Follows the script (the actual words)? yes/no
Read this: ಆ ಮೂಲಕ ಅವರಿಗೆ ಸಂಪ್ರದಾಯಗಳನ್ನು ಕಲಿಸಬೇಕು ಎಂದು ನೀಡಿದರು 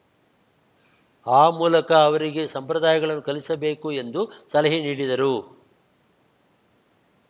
no